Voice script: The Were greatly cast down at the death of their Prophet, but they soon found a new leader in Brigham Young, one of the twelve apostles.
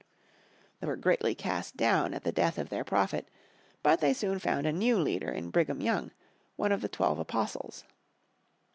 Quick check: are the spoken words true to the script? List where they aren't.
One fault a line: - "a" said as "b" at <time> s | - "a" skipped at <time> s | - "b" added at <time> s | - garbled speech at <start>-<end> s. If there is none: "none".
none